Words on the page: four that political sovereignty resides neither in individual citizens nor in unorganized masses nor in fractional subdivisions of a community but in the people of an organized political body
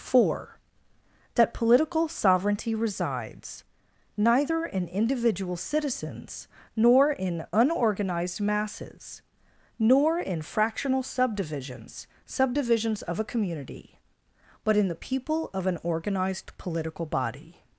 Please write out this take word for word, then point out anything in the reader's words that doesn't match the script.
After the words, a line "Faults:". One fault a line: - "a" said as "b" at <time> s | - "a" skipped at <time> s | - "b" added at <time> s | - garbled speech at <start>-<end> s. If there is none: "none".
four that political sovereignty resides neither in individual citizens nor in unorganized masses nor in fractional subdivisions subdivisions of a community but in the people of an organized political body
Faults:
- "subdivisions" added at 12.2 s